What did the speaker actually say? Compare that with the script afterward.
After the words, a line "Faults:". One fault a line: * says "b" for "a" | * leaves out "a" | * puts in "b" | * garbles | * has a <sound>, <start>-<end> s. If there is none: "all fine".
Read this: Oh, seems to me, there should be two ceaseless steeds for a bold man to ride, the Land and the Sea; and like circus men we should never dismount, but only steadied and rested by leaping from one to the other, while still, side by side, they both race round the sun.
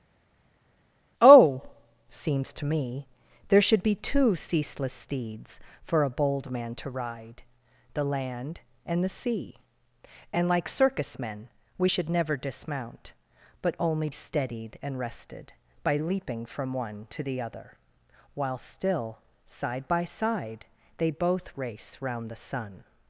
Oh, seems to me, there should be two ceaseless steeds for a bold man to ride, the Land and the Sea; and like circus men we should never dismount, but only steadied and rested by leaping from one to the other, while still, side by side, they both race round the sun.
Faults:
all fine